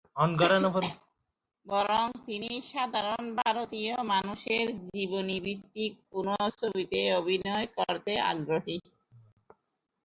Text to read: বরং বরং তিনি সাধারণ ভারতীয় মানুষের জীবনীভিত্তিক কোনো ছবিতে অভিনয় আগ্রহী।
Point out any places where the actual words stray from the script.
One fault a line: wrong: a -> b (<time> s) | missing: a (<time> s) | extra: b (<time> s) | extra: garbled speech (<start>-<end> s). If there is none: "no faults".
missing: বরং (2.0 s)
extra: করতে (7.8 s)